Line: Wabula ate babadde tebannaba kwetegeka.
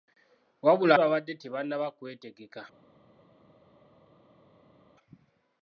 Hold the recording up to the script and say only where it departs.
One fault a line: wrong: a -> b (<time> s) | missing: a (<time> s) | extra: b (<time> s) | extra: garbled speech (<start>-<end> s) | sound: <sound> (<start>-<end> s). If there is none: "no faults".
missing: ate (0.9 s)